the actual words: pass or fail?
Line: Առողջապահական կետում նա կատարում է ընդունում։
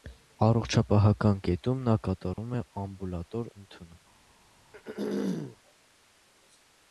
fail